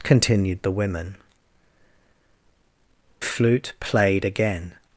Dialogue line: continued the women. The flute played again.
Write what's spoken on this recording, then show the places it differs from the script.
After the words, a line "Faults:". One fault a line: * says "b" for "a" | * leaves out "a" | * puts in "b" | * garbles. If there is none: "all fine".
continued the women. Flute played again.
Faults:
* leaves out "The"